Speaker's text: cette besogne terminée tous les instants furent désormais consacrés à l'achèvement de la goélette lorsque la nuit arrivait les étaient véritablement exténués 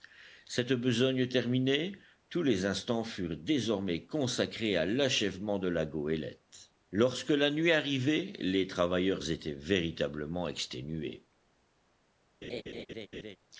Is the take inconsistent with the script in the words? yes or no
yes